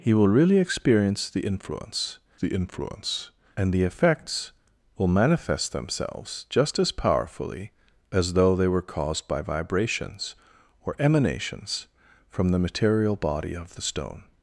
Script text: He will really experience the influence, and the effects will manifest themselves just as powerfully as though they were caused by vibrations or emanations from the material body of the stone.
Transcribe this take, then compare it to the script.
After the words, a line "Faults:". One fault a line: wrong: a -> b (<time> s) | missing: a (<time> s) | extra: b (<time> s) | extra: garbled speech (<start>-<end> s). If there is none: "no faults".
He will really experience the influence the influence, and the effects will manifest themselves just as powerfully as though they were caused by vibrations or emanations from the material body of the stone.
Faults:
extra: the influence (2.4 s)